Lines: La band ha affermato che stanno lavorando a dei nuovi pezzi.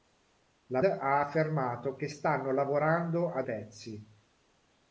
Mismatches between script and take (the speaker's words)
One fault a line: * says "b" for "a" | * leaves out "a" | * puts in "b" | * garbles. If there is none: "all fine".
* leaves out "band"
* leaves out "dei nuovi"